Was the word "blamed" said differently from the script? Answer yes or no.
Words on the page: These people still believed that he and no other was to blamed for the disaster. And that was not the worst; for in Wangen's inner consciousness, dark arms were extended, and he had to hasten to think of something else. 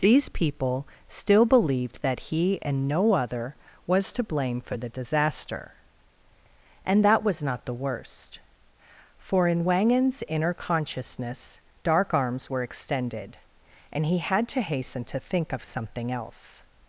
yes